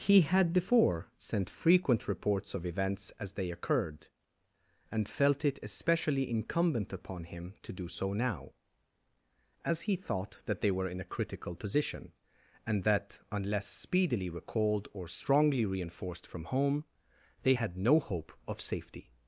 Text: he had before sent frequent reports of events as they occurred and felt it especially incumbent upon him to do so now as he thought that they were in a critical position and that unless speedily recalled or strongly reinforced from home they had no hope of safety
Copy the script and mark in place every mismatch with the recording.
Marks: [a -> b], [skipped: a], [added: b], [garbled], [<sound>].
he had before sent frequent reports of events as they occurred and felt it especially incumbent upon him to do so now as he thought that they were in a critical position and that unless speedily recalled or strongly reinforced from home they had no hope of safety